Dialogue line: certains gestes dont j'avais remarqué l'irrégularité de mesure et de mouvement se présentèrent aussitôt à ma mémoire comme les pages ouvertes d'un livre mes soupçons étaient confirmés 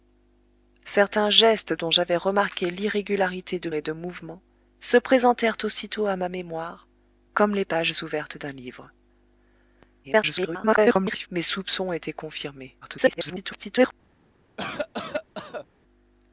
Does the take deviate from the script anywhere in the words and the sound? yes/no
yes